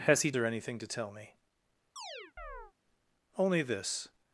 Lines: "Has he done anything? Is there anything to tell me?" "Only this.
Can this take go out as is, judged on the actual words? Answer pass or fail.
fail